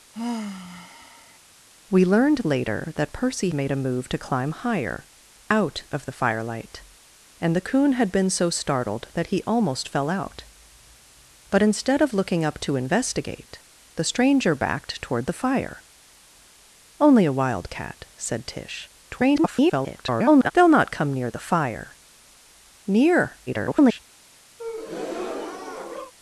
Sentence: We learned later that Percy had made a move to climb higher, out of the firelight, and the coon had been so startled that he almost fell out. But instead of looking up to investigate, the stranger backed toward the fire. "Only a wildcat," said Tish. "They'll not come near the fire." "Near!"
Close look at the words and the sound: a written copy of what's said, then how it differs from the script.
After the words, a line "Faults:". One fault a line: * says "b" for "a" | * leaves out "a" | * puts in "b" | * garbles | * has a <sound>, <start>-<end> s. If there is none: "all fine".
We learned later that Percy made a move to climb higher, out of the firelight, and the coon had been so startled that he almost fell out. But instead of looking up to investigate, the stranger backed toward the fire. "Only a wildcat," said Tish. [garbled] "They'll not come near the fire." "Near!" [garbled]
Faults:
* has a sigh, 0.1-1.4 s
* leaves out "had"
* garbles
* garbles
* has a breath, 24.6-26.1 s